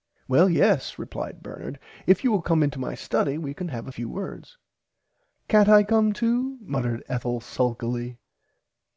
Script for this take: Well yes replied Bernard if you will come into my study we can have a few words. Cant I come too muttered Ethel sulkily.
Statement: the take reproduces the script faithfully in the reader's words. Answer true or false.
true